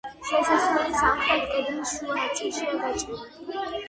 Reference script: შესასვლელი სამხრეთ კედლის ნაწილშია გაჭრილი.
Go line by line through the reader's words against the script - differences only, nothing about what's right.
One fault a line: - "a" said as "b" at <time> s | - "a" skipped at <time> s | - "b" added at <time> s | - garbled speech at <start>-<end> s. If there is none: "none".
- "შუა" added at 2.0 s